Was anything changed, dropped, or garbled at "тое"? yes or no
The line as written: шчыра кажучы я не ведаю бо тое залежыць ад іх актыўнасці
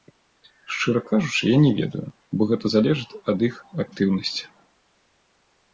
yes